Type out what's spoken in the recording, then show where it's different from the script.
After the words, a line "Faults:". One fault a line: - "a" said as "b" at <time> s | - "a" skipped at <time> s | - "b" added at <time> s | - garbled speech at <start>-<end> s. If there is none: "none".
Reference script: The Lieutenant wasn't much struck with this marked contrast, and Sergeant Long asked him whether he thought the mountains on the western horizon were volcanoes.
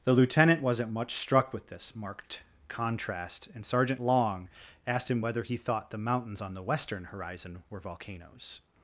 The Lieutenant wasn't much struck with this marked contrast, and Sergeant Long asked him whether he thought the mountains on the western horizon were volcanoes.
Faults:
none